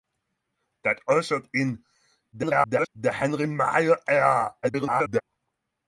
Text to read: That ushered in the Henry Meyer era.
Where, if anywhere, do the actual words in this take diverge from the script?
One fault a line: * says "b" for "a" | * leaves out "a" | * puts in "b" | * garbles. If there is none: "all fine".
* garbles
* garbles